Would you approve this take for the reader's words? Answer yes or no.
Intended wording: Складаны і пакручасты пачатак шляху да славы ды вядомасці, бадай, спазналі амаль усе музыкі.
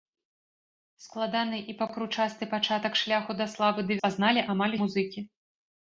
no